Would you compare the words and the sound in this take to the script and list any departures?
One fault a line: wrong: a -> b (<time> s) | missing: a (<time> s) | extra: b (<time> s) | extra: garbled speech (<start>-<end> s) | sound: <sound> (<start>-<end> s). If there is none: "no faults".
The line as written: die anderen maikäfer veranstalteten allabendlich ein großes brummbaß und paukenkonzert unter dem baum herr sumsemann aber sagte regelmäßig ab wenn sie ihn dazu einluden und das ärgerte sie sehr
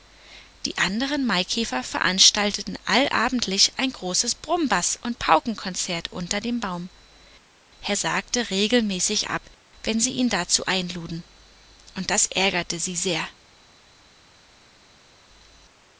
missing: sumsemann aber (8.0 s)